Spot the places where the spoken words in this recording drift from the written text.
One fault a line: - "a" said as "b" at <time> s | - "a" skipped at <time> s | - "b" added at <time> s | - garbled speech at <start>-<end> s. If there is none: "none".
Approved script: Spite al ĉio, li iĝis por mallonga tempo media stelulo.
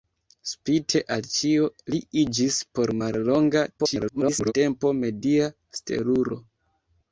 - garbled speech at 3.8-4.5 s